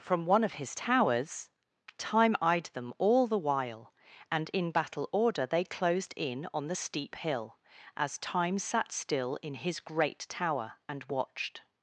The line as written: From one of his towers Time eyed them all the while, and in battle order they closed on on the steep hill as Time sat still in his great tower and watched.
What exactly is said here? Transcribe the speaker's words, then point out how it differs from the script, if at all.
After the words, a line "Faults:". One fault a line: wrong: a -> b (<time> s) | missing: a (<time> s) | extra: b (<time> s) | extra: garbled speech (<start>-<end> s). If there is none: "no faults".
From one of his towers Time eyed them all the while, and in battle order they closed in on the steep hill as Time sat still in his great tower and watched.
Faults:
wrong: on -> in (6.2 s)